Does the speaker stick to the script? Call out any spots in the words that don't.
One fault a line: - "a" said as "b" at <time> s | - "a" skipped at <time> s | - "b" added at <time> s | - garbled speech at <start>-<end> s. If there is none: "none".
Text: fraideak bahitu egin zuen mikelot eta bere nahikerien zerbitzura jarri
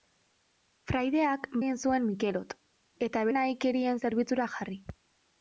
- "bahitu" skipped at 1.4 s
- "bere" skipped at 3.3 s